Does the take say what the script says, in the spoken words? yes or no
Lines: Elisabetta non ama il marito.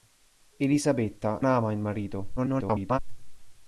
no